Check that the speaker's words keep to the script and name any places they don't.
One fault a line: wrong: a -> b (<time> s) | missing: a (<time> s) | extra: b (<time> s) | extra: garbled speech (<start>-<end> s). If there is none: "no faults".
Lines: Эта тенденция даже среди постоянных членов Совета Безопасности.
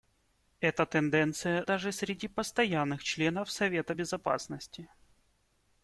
no faults